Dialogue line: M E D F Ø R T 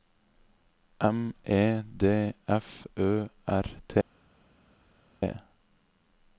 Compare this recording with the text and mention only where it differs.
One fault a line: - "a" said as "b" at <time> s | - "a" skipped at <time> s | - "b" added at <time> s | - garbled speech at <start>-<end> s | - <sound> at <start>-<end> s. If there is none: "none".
none